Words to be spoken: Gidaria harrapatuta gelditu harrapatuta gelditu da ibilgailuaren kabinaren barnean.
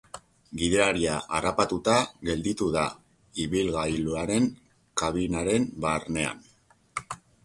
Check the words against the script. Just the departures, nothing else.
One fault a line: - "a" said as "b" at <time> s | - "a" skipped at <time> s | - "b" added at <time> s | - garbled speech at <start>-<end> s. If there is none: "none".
- "harrapatuta gelditu" skipped at 2.7 s